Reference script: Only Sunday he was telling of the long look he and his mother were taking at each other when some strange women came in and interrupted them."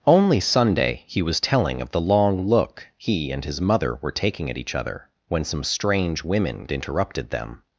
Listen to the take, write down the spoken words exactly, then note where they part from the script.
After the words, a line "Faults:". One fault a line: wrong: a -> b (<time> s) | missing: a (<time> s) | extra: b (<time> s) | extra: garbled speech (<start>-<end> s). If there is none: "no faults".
Only Sunday he was telling of the long look he and his mother were taking at each other when some strange women interrupted them."
Faults:
missing: came in and (6.7 s)